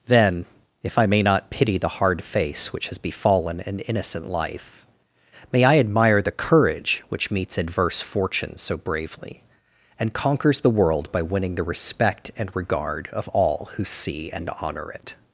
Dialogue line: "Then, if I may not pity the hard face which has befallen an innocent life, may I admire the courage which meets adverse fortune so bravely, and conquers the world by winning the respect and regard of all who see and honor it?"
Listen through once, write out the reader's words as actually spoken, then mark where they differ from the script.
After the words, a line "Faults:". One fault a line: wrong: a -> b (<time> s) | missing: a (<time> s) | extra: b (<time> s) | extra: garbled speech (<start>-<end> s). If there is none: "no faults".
"Then, if I may not pity the hard face which has befallen an innocent life, may I admire the courage which meets adverse fortune so bravely, and conquers the world by winning the respect and regard of all who see and honor it?"
Faults:
no faults